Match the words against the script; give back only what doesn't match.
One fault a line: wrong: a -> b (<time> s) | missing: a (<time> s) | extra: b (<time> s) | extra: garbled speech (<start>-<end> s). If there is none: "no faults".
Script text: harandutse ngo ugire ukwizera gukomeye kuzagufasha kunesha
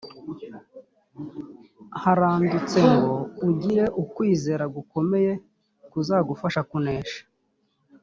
no faults